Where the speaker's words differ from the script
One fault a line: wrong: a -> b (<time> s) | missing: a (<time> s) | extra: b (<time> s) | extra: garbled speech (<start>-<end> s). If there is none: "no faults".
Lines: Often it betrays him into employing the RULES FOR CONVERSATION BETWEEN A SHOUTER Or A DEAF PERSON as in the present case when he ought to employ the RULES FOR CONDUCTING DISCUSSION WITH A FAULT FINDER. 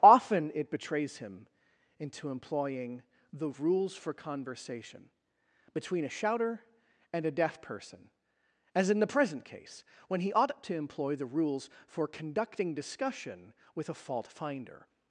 wrong: Or -> AND (7.1 s)